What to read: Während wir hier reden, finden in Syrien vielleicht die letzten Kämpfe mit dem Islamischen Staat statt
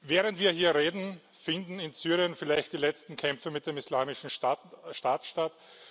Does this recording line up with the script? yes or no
yes